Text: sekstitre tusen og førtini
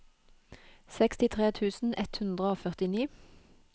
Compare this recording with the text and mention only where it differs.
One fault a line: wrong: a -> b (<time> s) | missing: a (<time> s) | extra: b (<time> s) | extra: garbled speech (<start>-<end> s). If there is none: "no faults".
extra: ett hundre (2.0 s)